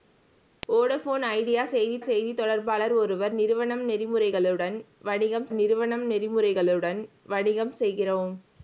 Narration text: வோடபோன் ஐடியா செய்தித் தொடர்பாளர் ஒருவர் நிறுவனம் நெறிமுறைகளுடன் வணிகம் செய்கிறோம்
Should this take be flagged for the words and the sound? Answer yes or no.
yes